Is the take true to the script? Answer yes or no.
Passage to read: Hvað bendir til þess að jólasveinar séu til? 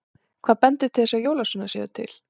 yes